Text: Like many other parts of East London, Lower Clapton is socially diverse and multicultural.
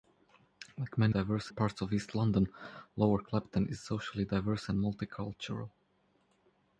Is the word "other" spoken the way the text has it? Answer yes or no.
no